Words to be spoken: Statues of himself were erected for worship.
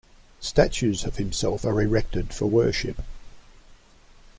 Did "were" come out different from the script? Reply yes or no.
yes